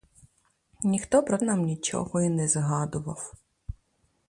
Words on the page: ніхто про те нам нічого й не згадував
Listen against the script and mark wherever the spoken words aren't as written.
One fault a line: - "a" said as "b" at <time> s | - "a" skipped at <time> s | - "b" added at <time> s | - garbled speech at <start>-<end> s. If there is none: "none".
- "те" skipped at 1.4 s